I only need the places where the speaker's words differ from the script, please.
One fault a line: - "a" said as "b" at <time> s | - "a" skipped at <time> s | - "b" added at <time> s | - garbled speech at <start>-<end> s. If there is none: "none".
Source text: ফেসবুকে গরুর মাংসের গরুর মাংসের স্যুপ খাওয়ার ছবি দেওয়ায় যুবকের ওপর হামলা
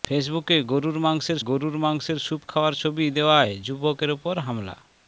none